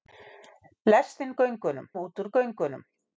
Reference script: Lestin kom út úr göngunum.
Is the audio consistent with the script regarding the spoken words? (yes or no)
no